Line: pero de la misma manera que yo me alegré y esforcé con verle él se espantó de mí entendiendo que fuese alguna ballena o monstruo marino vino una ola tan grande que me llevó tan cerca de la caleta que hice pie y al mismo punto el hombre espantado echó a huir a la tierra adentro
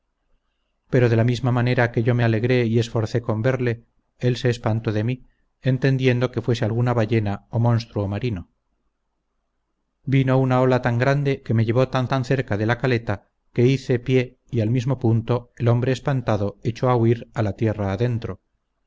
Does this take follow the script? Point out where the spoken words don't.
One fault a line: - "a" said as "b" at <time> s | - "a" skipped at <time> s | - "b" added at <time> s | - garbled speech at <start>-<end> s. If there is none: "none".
- "tan" added at 12.1 s